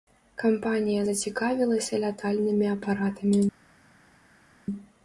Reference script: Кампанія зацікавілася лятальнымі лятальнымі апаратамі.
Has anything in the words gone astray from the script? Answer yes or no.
yes